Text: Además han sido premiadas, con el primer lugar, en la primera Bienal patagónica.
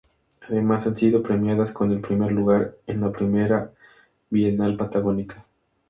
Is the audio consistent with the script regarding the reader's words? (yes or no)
yes